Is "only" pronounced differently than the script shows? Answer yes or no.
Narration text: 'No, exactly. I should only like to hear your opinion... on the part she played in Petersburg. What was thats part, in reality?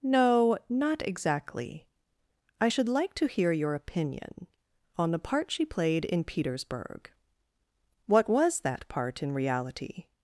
yes